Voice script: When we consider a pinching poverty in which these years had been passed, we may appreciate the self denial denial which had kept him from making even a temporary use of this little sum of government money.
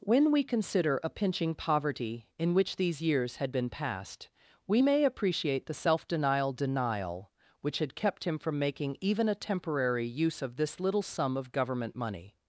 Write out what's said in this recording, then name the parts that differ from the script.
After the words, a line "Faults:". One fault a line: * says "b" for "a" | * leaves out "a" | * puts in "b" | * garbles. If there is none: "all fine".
When we consider a pinching poverty in which these years had been passed, we may appreciate the self denial denial which had kept him from making even a temporary use of this little sum of government money.
Faults:
all fine